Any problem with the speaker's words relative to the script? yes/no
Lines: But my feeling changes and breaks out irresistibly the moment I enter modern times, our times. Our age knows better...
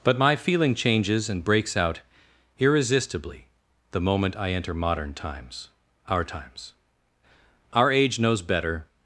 no